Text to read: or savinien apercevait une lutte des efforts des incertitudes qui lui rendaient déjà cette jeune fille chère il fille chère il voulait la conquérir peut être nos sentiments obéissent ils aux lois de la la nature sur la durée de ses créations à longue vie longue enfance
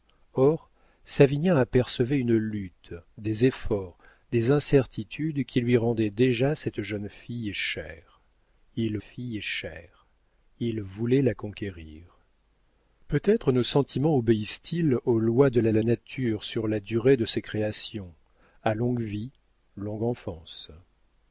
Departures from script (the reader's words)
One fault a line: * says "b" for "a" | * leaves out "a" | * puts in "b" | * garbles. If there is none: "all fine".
all fine